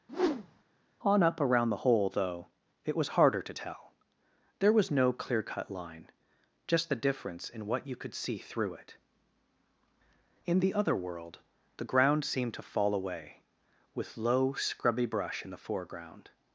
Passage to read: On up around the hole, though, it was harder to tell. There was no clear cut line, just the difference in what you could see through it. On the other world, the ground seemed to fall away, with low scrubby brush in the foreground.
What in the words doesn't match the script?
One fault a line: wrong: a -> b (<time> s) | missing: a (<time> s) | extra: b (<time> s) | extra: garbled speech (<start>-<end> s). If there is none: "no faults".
wrong: On -> In (10.5 s)